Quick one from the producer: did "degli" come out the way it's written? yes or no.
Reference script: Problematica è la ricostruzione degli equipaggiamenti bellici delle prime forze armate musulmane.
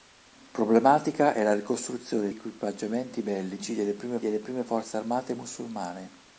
no